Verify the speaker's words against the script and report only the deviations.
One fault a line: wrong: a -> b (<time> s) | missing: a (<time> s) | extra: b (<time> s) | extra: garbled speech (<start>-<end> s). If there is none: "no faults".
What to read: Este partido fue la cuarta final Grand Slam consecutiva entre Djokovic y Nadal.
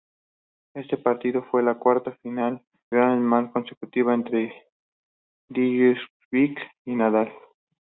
no faults